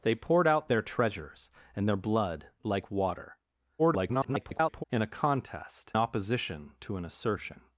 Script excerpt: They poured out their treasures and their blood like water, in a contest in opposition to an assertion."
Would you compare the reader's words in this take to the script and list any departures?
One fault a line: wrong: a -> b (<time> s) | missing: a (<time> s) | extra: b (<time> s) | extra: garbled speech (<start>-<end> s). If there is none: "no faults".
extra: garbled speech (3.8-4.8 s)
missing: in (5.9 s)